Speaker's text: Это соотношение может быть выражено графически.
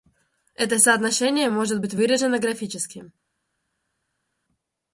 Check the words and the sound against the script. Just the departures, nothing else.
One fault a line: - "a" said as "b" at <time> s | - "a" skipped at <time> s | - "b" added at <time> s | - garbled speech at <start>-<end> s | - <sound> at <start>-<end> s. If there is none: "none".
none